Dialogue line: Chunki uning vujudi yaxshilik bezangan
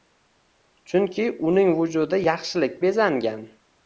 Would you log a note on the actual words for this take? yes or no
no